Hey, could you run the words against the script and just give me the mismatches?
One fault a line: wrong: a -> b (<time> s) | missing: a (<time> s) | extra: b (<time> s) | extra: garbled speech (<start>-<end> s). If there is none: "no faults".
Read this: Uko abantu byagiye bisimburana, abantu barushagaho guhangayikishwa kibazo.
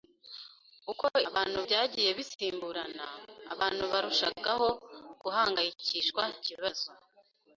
no faults